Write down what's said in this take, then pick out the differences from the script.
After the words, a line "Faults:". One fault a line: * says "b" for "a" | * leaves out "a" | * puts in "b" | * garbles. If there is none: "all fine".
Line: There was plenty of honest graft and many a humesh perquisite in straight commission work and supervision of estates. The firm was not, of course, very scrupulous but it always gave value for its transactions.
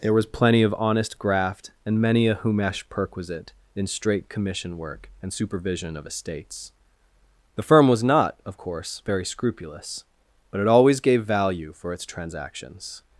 There was plenty of honest graft and many a humesh perquisite in straight commission work and supervision of estates. The firm was not, of course, very scrupulous but it always gave value for its transactions.
Faults:
all fine